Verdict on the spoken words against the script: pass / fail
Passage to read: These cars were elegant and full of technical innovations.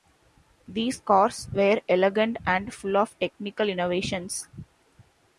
pass